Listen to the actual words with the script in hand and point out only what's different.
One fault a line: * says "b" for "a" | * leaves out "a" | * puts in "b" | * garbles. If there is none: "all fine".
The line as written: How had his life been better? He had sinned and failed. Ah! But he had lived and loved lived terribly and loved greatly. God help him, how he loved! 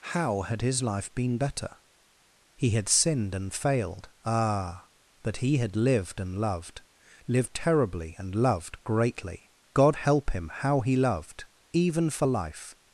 * puts in "Even for life"